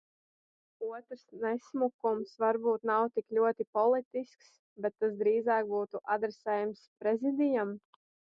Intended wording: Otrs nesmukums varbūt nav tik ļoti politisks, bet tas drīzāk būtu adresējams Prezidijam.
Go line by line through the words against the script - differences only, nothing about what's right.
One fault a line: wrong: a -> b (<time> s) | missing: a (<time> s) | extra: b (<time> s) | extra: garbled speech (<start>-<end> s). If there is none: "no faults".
no faults